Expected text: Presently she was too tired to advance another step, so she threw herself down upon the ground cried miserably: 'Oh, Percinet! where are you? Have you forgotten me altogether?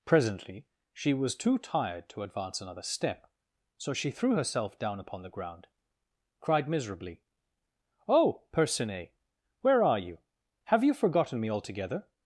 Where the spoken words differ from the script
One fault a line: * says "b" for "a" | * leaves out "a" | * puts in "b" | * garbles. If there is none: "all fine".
all fine